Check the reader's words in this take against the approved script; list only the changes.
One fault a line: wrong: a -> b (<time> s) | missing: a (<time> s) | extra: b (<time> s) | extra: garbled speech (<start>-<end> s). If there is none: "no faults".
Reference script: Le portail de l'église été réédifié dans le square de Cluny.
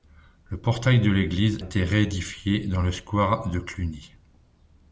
no faults